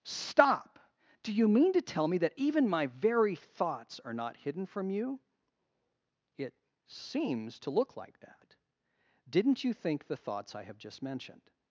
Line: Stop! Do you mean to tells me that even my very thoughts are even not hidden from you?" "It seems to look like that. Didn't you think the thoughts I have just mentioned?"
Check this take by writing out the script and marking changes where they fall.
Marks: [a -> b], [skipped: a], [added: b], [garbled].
Stop! Do you mean to [tells -> tell] me that even my very thoughts are [skipped: even] not hidden from you?" "It seems to look like that. Didn't you think the thoughts I have just mentioned?"